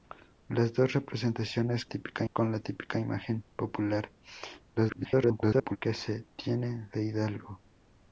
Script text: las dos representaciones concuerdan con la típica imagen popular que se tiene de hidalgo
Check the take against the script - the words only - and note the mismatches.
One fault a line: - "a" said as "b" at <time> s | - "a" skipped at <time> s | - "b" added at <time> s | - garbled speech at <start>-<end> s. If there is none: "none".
- "concuerdan" said as "típica" at 1.8 s
- garbled speech at 4.8-5.8 s